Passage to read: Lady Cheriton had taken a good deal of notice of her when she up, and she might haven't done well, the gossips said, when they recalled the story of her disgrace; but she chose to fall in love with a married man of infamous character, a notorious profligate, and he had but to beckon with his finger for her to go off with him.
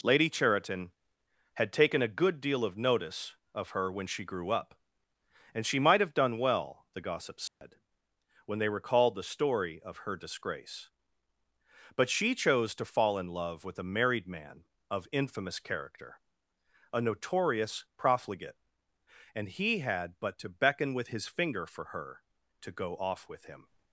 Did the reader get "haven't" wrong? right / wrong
wrong